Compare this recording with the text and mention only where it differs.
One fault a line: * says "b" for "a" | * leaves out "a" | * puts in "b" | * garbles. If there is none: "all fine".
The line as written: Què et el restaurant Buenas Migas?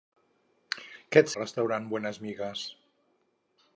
all fine